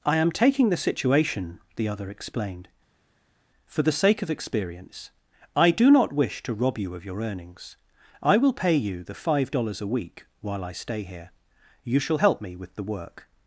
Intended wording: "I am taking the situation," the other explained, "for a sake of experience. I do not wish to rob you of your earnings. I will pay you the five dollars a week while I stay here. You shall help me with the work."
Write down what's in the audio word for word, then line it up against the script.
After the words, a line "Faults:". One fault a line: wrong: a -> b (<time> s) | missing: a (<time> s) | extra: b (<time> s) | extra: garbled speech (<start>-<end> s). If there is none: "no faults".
"I am taking the situation," the other explained, "for the sake of experience. I do not wish to rob you of your earnings. I will pay you the five dollars a week while I stay here. You shall help me with the work."
Faults:
wrong: a -> the (3.8 s)